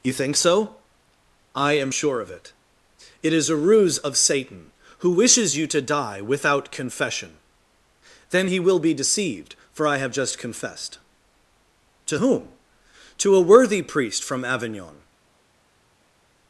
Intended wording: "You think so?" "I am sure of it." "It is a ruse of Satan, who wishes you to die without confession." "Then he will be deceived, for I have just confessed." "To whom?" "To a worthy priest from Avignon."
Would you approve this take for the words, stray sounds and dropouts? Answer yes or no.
yes